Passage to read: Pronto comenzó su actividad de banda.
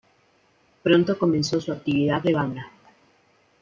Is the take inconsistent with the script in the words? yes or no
no